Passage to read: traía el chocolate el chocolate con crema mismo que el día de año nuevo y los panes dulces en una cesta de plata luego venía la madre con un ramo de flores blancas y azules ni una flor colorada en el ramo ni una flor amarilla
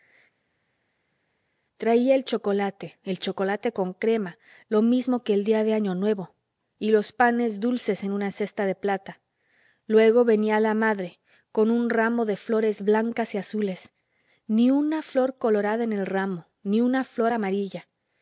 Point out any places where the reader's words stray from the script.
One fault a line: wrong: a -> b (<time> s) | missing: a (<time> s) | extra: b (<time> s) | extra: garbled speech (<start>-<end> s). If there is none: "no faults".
extra: lo (4.7 s)